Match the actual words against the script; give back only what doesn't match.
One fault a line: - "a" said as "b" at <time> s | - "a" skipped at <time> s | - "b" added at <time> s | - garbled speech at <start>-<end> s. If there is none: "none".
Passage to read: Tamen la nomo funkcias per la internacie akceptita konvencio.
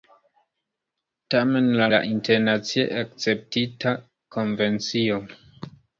- "nomo funkcias per" skipped at 1.9 s